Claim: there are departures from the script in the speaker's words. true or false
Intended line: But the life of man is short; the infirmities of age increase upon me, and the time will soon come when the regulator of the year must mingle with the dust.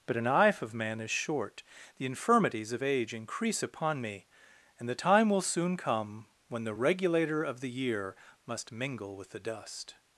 true